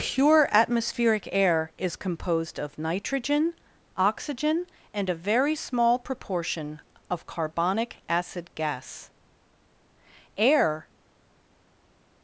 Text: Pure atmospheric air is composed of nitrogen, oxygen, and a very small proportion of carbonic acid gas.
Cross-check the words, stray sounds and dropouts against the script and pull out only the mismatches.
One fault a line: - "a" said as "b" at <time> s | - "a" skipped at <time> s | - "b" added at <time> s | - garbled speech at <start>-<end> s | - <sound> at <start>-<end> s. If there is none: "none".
- "Air" added at 10.4 s